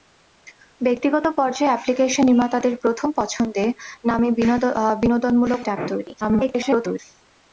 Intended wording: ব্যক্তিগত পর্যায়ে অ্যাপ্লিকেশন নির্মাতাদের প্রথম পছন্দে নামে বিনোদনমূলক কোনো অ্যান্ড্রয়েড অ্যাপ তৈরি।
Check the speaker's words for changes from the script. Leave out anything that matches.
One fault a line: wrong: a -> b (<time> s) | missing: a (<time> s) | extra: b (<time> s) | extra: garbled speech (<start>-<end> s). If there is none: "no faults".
missing: কোনো অ্যান্ড্রয়েড (5.6 s)
extra: garbled speech (6.2-7.0 s)